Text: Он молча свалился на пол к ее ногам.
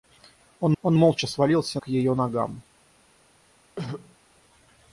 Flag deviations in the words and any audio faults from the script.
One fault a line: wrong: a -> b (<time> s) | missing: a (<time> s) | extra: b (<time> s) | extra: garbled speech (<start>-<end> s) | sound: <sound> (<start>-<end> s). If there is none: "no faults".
extra: он (0.8 s)
missing: на пол (1.8 s)
sound: throat clearing (3.8-4.2 s)